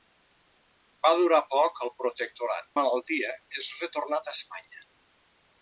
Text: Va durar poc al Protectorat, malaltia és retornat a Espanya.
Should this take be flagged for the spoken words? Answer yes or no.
no